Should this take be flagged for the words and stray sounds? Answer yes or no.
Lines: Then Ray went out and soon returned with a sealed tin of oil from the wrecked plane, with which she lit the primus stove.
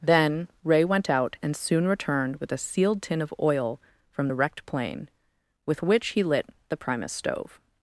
yes